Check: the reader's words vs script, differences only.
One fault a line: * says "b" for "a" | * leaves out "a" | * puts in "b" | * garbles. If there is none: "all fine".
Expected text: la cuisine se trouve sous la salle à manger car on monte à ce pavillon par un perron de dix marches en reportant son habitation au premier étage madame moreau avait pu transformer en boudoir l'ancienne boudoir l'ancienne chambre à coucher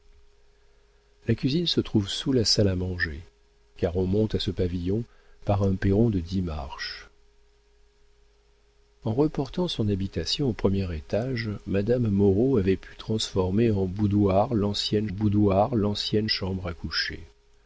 all fine